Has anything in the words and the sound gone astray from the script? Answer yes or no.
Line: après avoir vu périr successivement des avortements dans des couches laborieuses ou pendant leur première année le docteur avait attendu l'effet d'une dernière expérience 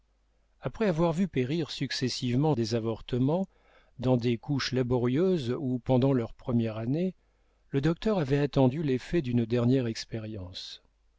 no